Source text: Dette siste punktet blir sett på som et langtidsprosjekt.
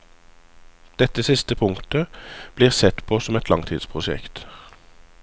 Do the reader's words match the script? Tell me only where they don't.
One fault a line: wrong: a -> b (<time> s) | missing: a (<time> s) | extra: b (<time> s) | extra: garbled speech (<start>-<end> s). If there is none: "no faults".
no faults